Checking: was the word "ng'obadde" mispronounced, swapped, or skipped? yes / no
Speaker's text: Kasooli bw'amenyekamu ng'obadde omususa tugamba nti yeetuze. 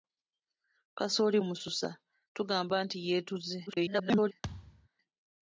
yes